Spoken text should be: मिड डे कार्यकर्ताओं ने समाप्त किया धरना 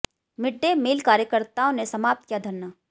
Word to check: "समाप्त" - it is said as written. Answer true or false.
true